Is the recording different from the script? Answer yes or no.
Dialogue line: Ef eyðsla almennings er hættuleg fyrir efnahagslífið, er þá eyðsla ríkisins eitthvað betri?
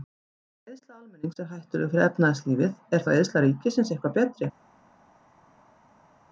no